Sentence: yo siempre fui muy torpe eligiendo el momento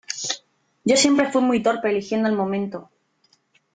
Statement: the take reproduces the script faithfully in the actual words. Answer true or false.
true